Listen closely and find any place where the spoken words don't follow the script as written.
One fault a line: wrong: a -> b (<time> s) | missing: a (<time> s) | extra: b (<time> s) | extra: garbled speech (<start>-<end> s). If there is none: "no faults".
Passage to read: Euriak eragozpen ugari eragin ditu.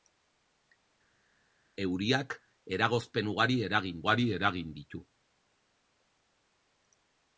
extra: ugari eragin (4.0 s)